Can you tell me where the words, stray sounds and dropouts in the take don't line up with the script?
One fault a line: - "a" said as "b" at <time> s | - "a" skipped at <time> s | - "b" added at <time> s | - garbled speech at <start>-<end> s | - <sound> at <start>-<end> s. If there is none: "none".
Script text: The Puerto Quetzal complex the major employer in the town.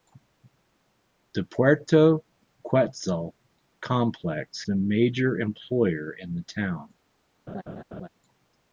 - laugh at 7.5-8.1 s